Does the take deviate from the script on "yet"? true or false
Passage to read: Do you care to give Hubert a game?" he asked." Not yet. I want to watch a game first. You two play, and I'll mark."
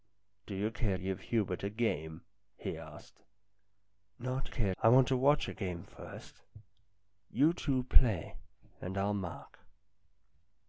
true